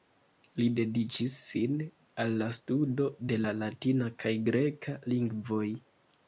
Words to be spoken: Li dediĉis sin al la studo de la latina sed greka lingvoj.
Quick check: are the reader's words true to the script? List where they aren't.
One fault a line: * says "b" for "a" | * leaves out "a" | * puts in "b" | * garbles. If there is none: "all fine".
* says "kaj" for "sed"